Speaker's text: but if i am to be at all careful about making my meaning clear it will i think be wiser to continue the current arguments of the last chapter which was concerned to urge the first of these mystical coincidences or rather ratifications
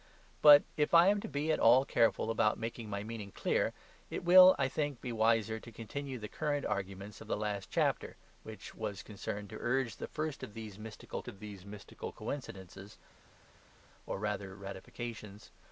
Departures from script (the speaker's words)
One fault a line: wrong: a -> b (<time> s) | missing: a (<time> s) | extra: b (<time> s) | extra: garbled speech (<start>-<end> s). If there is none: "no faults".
extra: of these mystical (11.3 s)